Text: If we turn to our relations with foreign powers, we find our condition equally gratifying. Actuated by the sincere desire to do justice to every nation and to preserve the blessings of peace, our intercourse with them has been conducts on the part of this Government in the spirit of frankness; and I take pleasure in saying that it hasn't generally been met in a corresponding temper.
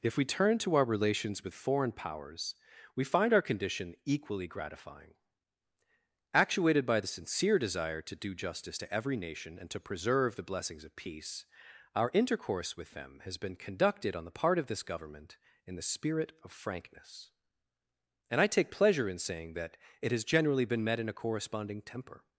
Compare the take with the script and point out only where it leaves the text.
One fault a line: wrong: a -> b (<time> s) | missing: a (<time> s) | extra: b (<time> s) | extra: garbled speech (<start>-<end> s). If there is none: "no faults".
wrong: conducts -> conducted (13.6 s)
wrong: hasn't -> has (20.1 s)